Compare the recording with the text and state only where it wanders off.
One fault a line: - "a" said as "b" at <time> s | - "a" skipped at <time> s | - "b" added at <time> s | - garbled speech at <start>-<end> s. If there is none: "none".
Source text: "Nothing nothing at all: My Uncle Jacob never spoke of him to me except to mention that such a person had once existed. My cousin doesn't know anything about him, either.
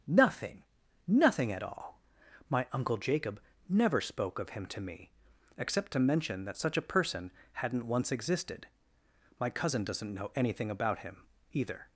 - "had" said as "hadn't" at 7.5 s